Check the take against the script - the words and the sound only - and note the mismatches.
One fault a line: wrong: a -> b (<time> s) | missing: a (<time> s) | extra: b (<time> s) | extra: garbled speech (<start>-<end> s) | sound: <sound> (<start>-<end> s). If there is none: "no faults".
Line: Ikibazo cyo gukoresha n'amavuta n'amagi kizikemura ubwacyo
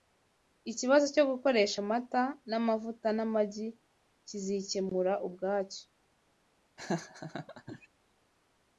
extra: amata (1.8 s)
sound: laugh (6.8-7.9 s)